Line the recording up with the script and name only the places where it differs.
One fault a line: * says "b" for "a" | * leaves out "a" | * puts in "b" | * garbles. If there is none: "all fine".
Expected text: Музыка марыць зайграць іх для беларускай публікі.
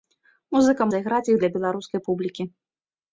* leaves out "марыць"